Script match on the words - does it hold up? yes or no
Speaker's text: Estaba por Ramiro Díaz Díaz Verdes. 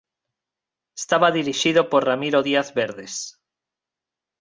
no